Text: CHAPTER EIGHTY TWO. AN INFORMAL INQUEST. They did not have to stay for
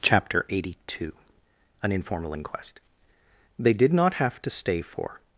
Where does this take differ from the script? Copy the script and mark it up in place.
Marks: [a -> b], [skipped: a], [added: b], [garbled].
CHAPTER EIGHTY TWO. AN INFORMAL INQUEST. They did not have to stay for